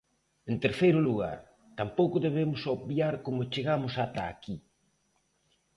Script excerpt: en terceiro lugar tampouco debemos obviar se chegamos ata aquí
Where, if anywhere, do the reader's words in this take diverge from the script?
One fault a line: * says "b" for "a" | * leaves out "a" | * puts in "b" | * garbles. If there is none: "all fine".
* says "como" for "se"